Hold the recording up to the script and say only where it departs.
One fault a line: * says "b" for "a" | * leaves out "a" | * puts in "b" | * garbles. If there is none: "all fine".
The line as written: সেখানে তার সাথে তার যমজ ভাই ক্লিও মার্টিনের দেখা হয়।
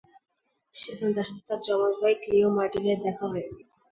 all fine